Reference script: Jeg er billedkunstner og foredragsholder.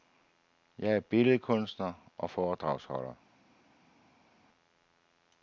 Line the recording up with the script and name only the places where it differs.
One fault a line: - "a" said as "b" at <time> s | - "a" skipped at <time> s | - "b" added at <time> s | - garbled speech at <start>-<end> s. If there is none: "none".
none